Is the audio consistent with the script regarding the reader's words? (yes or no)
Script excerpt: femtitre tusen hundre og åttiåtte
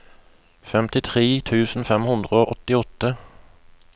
no